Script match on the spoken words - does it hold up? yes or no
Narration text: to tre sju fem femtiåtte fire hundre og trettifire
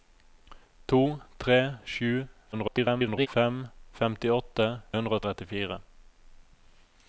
no